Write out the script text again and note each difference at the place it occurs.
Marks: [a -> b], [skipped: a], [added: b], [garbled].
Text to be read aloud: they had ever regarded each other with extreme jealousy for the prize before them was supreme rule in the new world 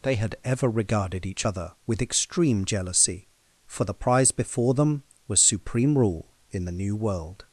they had ever regarded each other with extreme jealousy for the prize before them was supreme rule in the new world